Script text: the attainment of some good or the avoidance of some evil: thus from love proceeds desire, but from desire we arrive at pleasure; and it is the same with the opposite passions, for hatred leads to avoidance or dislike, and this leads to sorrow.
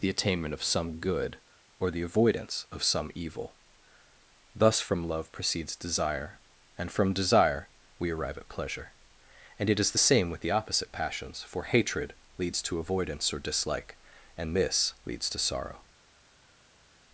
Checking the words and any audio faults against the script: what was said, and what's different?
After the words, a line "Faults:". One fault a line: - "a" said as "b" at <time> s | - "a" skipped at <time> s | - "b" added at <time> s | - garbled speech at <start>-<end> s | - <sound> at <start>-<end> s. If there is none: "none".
the attainment of some good or the avoidance of some evil: thus from love proceeds desire, and from desire we arrive at pleasure; and it is the same with the opposite passions, for hatred leads to avoidance or dislike, and this leads to sorrow.
Faults:
- "but" said as "and" at 6.8 s